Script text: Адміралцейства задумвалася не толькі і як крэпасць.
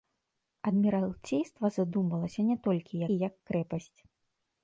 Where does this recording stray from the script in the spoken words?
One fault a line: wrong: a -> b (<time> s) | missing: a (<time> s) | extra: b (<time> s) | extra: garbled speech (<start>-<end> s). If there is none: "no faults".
no faults